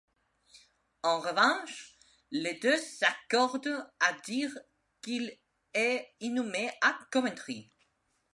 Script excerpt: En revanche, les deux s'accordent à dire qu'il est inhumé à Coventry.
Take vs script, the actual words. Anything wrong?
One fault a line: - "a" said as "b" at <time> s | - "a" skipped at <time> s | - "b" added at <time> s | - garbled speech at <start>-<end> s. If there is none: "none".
none